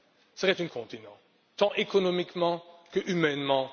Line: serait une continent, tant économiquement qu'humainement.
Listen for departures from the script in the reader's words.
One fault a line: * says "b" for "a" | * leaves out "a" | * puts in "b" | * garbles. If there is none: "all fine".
all fine